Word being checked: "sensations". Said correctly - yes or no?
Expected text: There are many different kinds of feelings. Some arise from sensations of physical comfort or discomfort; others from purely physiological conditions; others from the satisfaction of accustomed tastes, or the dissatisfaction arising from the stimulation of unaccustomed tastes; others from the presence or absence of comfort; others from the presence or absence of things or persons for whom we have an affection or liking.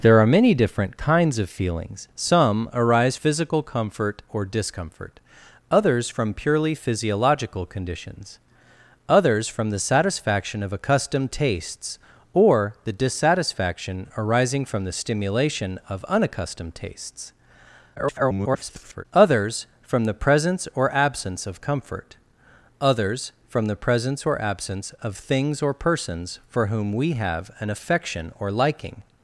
no